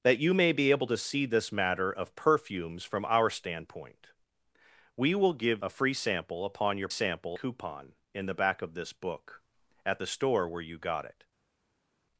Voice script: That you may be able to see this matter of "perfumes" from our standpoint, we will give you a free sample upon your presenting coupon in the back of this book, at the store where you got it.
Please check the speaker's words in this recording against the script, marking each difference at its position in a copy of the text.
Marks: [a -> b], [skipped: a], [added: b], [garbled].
That you may be able to see this matter of "perfumes" from our standpoint, we will give [skipped: you] a free sample upon your [presenting -> sample] coupon in the back of this book, at the store where you got it.